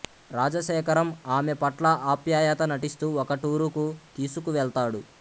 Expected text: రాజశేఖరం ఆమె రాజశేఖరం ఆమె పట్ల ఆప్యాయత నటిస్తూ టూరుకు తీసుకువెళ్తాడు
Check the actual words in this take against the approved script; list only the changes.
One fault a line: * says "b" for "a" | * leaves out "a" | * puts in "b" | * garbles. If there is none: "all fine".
* leaves out "రాజశేఖరం ఆమె"
* puts in "ఒక"